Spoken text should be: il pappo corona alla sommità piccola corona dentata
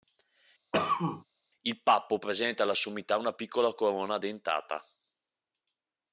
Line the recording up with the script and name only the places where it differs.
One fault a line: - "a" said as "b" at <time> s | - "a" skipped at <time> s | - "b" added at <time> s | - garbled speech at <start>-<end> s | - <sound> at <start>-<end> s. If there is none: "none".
- cough at 0.7-1.3 s
- "corona" said as "presenta" at 2.2 s
- "una" added at 3.2 s